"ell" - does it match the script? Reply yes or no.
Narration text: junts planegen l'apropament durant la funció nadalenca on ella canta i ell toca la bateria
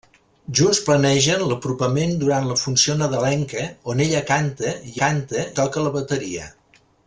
no